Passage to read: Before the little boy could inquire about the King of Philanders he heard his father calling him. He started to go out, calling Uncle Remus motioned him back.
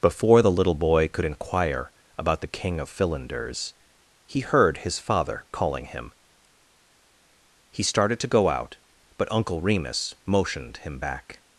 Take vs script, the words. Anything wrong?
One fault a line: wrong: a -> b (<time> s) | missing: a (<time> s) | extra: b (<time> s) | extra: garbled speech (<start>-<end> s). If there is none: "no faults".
wrong: calling -> but (9.2 s)